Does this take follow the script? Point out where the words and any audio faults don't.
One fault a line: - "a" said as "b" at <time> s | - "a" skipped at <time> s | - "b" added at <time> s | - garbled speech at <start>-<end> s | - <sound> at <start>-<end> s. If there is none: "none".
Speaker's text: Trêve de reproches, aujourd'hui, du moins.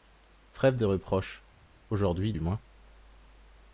none